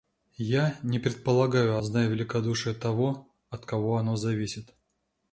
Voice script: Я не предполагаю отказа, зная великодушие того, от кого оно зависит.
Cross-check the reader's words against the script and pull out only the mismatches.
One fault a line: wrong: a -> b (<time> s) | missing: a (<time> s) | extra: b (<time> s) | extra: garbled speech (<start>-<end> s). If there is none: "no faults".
missing: отказа (1.8 s)